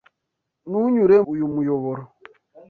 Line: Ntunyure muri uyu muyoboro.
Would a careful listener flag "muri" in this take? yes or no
yes